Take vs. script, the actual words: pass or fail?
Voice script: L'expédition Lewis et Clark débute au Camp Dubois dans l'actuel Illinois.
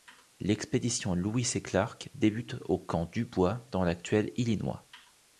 pass